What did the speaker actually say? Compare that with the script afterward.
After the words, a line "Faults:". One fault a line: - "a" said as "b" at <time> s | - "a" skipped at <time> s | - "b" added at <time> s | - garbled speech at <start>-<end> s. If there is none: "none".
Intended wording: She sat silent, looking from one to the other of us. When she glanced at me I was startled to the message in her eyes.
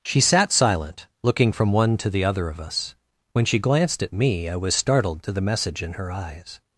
She sat silent, looking from one to the other of us. When she glanced at me I was startled to the message in her eyes.
Faults:
none